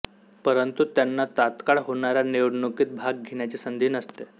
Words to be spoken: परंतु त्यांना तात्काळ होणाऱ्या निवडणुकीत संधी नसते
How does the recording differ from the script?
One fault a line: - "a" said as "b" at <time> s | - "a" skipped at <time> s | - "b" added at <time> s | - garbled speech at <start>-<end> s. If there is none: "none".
- "भाग घेण्याची" added at 3.0 s